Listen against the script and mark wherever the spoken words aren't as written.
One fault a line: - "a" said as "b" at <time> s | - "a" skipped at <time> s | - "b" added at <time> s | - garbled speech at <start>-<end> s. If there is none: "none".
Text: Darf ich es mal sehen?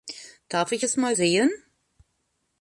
none